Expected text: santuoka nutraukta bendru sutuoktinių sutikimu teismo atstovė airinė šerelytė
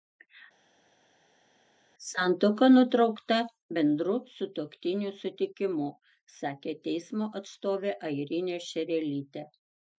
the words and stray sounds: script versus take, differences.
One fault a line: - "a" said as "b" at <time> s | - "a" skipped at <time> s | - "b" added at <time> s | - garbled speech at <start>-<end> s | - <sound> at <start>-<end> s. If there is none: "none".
- "sakė" added at 6.4 s